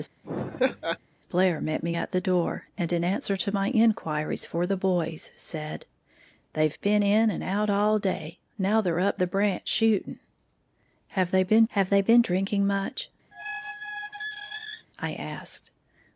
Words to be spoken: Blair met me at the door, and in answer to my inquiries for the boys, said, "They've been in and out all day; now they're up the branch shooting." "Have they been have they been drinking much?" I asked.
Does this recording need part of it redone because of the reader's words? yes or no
no